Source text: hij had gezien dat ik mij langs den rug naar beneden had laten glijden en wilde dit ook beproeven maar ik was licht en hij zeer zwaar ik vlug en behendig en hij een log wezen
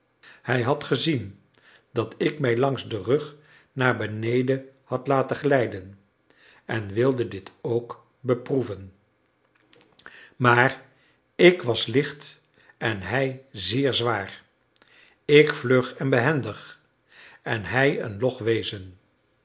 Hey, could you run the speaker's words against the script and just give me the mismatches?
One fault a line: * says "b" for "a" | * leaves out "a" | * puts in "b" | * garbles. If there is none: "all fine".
all fine